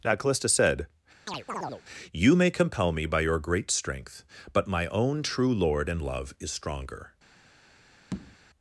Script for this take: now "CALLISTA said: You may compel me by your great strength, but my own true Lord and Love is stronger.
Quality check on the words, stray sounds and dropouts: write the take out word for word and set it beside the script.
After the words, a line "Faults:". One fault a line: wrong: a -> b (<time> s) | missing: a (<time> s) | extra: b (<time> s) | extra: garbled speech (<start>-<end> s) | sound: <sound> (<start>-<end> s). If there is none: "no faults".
now "CALLISTA said: You may compel me by your great strength, but my own true Lord and Love is stronger.
Faults:
sound: chirp (1.3-1.8 s)
sound: tap (8.1-8.4 s)